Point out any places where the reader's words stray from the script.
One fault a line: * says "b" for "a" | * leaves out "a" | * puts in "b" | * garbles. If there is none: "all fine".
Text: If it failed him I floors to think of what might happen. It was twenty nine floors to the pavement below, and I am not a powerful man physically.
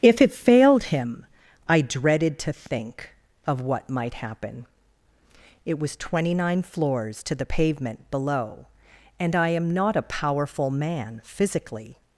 * says "dreaded" for "floors"